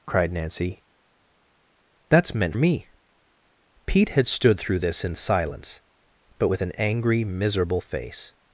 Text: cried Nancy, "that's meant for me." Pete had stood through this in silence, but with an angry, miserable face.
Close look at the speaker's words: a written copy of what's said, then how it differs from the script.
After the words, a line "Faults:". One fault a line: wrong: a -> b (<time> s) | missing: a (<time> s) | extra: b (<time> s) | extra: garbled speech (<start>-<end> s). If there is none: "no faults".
cried Nancy, "that's meant me." Pete had stood through this in silence, but with an angry, miserable face.
Faults:
missing: for (2.6 s)